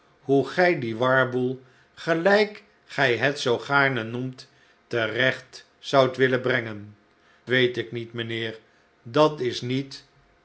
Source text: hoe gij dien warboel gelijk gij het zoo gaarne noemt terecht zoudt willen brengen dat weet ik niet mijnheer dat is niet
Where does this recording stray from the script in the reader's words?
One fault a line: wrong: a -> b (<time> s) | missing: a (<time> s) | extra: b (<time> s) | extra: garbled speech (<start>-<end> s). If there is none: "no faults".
missing: dat (7.0 s)